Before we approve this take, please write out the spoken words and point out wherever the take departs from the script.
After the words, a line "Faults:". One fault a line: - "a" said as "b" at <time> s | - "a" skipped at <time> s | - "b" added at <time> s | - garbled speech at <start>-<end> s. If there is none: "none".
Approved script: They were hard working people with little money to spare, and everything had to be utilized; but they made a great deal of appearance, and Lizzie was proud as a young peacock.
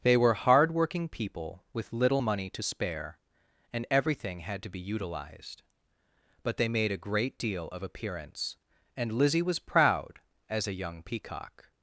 They were hard working people with little money to spare, and everything had to be utilized; but they made a great deal of appearance, and Lizzie was proud as a young peacock.
Faults:
none